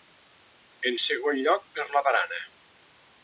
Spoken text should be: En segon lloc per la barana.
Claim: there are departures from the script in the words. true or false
false